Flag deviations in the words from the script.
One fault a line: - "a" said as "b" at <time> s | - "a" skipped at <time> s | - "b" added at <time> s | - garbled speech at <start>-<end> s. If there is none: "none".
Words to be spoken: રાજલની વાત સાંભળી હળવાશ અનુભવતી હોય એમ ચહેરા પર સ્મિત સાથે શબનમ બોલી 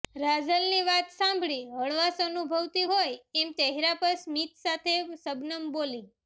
none